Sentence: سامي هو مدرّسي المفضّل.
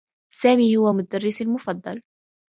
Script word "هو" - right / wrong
right